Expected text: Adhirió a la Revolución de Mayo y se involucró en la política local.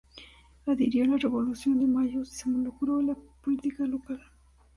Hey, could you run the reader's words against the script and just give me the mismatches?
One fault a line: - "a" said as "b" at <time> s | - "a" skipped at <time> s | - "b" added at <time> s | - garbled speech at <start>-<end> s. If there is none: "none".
none